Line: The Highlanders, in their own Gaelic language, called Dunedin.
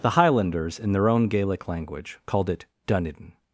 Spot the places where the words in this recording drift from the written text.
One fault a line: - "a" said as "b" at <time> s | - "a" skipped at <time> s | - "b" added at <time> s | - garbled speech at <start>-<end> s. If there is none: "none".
- "it" added at 2.5 s